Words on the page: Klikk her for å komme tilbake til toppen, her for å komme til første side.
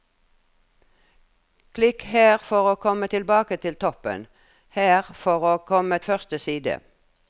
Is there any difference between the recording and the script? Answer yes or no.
yes